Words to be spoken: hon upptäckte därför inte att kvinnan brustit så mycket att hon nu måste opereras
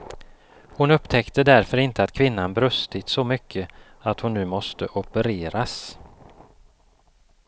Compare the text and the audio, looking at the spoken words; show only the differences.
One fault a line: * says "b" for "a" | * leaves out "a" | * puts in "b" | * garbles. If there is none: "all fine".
all fine